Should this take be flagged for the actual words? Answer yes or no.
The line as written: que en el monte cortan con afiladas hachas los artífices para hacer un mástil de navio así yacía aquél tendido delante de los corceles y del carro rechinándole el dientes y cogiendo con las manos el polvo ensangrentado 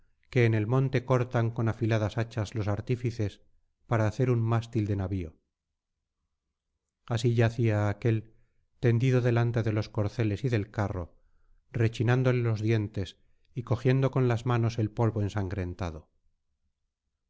yes